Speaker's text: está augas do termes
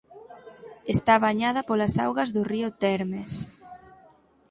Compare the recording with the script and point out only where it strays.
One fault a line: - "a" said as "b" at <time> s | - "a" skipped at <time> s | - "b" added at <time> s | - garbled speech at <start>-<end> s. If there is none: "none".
- "bañada polas" added at 1.2 s
- "río" added at 2.5 s